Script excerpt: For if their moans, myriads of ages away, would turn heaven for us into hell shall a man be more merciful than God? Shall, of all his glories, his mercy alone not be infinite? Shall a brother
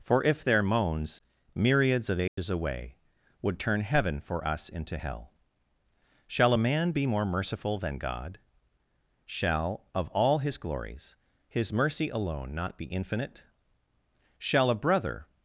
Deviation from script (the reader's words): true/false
false